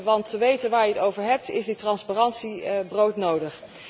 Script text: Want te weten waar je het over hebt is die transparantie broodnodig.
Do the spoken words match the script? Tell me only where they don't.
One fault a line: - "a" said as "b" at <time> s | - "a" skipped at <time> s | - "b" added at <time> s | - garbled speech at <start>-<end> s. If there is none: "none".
none